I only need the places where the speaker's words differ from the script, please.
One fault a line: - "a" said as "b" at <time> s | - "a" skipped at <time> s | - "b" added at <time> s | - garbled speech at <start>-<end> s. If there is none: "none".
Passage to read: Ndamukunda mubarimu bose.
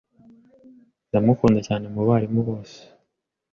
- "cyane" added at 1.7 s